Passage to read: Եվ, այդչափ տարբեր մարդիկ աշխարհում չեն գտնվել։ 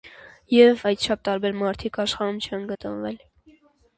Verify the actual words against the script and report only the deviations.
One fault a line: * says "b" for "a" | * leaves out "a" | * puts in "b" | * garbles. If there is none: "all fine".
all fine